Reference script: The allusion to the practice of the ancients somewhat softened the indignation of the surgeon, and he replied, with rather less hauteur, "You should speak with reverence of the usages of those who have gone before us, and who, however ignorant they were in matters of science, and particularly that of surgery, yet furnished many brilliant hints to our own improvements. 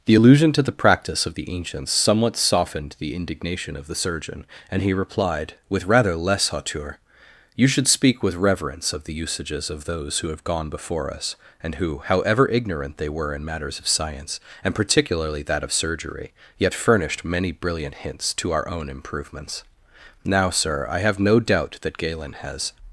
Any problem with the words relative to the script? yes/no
yes